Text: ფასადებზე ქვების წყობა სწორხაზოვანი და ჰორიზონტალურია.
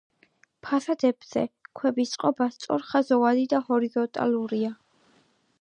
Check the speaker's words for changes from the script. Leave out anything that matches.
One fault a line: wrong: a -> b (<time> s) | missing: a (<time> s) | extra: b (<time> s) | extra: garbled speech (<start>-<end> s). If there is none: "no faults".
no faults